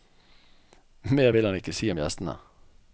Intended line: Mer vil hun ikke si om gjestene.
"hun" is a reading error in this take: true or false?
true